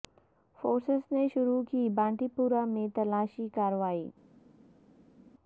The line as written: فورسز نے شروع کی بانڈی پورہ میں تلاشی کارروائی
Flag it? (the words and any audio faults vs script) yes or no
no